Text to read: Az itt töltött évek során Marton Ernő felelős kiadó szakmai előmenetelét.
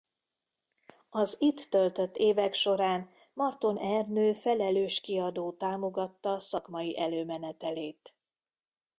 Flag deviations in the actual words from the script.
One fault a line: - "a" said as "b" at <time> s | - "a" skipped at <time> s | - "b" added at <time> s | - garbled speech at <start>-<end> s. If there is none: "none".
- "támogatta" added at 5.5 s